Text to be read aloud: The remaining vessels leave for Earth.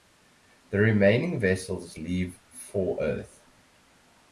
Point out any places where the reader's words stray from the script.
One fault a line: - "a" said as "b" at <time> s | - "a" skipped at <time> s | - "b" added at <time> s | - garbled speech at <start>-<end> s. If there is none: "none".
none